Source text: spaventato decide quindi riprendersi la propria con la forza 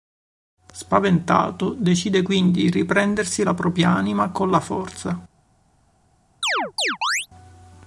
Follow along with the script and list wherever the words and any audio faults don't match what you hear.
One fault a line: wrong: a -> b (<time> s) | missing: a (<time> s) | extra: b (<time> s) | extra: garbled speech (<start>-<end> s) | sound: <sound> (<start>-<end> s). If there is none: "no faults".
extra: di (2.6 s)
extra: anima (3.9 s)
sound: chirp (6.4-7.3 s)